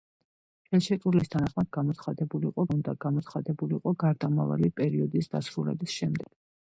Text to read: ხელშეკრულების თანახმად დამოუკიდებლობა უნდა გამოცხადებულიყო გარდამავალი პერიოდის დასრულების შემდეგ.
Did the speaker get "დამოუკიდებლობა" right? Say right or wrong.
wrong